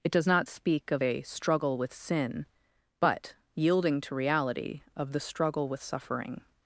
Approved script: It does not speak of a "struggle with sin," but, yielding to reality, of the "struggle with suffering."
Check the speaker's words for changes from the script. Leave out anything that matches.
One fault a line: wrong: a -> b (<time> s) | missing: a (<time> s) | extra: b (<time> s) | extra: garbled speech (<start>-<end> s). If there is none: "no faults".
no faults